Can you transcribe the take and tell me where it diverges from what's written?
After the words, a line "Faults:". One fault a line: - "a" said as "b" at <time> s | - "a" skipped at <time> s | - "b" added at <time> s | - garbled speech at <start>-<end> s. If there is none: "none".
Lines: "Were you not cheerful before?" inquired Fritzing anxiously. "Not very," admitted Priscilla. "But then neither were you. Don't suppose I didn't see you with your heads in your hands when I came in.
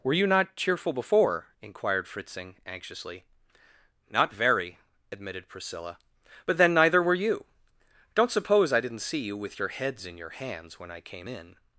"Were you not cheerful before?" inquired Fritzing anxiously. "Not very," admitted Priscilla. "But then neither were you. Don't suppose I didn't see you with your heads in your hands when I came in.
Faults:
none